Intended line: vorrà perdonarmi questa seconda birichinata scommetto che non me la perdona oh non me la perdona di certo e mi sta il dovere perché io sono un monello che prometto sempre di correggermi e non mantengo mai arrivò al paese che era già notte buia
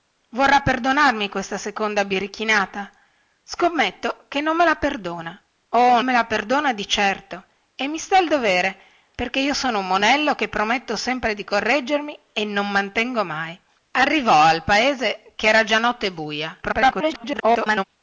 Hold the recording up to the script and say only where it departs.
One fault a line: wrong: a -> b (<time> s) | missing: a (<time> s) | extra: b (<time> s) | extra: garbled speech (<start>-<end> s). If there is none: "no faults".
missing: non (6.0 s)
extra: garbled speech (16.6-17.8 s)